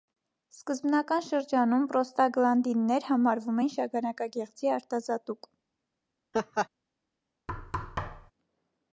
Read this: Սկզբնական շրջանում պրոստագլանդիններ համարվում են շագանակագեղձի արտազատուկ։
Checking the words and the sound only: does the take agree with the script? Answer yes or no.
no